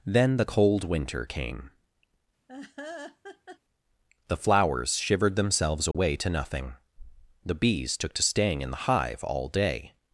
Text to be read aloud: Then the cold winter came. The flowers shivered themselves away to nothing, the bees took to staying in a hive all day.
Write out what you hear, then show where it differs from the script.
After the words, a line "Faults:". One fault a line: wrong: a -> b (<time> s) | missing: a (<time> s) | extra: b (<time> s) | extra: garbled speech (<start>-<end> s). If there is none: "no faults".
Then the cold winter came. The flowers shivered themselves away to nothing, the bees took to staying in the hive all day.
Faults:
wrong: a -> the (8.7 s)